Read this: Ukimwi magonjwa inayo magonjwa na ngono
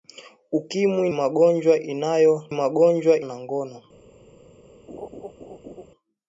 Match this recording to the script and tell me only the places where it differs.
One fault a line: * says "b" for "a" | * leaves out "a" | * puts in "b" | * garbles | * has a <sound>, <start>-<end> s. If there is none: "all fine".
* has a laugh, 4.9-5.9 s